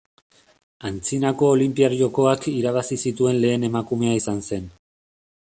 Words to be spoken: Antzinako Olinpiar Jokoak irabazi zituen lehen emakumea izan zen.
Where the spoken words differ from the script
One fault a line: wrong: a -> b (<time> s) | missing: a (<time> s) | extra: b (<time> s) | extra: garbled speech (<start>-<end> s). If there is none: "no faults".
no faults